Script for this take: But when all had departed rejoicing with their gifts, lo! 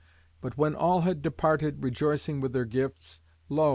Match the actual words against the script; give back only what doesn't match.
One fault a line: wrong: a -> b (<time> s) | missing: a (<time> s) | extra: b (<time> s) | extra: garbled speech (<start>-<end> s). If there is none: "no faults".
no faults